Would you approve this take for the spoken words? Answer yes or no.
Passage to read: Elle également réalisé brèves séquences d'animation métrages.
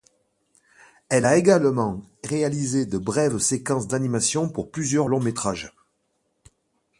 no